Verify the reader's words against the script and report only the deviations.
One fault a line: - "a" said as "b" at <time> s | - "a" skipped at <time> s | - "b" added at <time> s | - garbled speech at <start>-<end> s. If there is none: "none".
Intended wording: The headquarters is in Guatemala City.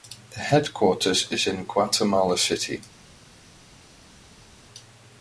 none